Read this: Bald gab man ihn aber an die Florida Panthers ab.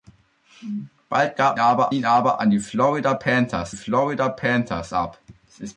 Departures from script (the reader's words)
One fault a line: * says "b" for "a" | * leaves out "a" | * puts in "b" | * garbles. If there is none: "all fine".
* says "aber" for "man"
* puts in "Florida Panthers"